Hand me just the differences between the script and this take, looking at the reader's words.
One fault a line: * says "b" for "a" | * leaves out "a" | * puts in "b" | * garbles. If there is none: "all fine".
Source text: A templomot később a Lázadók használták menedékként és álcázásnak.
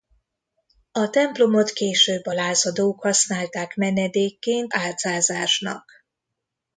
* leaves out "és"